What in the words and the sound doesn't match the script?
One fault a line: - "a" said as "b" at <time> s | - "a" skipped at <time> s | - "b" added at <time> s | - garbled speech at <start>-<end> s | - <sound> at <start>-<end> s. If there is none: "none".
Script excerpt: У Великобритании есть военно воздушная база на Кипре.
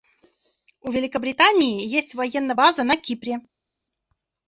- "воздушная" skipped at 2.5 s